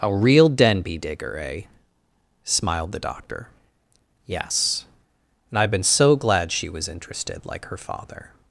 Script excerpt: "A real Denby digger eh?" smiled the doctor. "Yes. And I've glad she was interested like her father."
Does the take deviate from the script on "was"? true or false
false